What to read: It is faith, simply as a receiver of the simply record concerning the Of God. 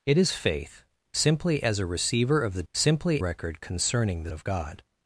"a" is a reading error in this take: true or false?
false